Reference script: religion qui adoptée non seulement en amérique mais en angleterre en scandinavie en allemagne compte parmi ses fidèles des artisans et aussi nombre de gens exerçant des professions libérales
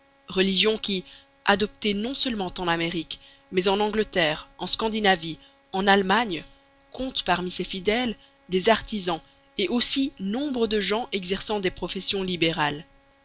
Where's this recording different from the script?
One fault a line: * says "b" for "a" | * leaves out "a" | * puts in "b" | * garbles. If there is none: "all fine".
all fine